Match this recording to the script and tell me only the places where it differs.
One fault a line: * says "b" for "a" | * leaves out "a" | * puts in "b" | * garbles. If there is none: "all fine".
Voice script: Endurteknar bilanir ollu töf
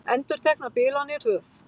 * leaves out "ollu"